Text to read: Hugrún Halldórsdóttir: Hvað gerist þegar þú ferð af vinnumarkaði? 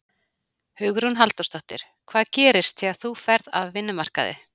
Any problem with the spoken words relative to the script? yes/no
no